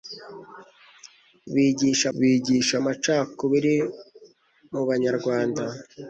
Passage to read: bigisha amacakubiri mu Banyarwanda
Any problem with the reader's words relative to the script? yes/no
yes